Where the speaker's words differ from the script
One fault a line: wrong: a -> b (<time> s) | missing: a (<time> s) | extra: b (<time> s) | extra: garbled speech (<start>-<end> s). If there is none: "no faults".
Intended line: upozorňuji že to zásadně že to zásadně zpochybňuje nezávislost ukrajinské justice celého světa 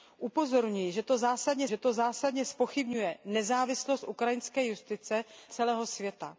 no faults